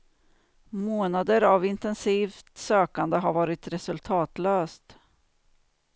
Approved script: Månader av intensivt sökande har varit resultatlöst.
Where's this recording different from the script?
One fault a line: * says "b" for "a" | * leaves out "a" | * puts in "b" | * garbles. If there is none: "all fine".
all fine